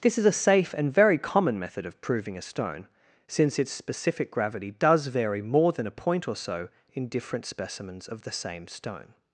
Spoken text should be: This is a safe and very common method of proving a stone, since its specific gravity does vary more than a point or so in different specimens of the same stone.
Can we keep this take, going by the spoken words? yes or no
yes